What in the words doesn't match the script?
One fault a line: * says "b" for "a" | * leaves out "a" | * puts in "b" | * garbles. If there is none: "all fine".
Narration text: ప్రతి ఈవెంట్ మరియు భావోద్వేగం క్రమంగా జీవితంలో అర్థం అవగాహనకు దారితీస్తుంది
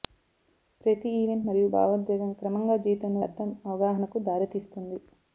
all fine